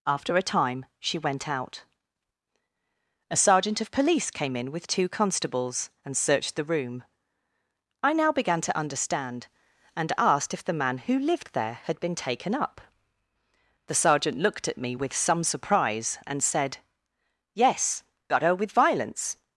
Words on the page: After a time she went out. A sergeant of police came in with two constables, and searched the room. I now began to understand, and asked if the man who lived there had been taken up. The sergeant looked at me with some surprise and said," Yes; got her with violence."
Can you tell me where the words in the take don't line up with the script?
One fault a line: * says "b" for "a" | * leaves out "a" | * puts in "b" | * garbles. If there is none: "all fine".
all fine